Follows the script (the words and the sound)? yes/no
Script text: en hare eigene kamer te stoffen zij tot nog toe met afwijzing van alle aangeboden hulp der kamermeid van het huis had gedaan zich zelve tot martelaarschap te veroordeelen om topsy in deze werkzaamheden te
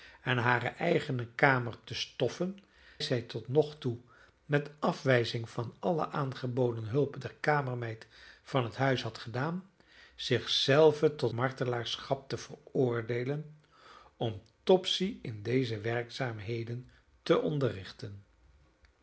yes